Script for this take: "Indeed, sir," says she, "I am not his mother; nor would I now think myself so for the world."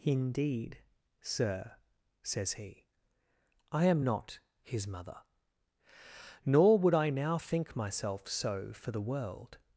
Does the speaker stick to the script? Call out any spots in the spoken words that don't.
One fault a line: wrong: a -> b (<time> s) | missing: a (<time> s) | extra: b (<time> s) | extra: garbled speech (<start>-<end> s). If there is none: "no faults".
wrong: she -> he (2.5 s)